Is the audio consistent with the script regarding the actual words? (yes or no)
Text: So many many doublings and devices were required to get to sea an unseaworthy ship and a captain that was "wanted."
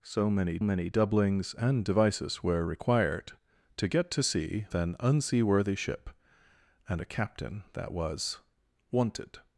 yes